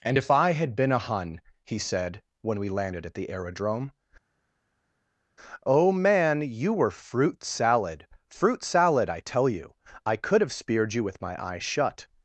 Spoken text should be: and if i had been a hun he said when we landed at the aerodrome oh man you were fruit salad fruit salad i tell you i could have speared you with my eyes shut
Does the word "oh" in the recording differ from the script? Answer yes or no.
no